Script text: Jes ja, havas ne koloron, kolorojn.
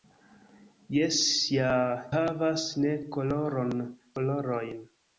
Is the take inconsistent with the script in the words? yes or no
no